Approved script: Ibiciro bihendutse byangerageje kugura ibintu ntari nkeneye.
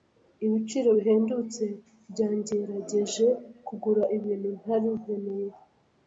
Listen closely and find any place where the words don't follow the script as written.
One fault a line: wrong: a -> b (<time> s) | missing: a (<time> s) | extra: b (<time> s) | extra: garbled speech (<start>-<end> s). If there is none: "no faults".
no faults